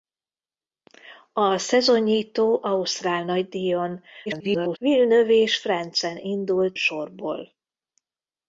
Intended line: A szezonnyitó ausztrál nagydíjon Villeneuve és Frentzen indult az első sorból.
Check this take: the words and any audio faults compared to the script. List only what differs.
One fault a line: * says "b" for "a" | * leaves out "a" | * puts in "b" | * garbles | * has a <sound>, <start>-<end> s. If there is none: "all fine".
* garbles
* leaves out "az első"